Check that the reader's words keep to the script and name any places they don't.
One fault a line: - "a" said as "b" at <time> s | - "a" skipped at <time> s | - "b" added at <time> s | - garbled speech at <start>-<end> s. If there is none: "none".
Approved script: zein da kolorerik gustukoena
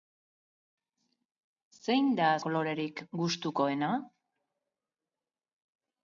none